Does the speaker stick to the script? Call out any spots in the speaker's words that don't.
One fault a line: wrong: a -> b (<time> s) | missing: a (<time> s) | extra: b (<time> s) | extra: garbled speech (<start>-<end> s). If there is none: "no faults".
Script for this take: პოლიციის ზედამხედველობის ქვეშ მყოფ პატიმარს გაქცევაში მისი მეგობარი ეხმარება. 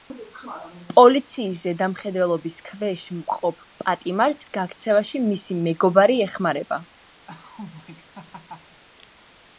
no faults